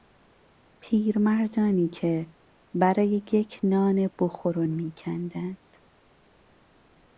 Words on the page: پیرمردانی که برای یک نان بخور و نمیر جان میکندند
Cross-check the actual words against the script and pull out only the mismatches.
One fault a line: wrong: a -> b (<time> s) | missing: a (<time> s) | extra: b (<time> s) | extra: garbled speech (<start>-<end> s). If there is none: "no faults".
missing: نمیر جان (4.6 s)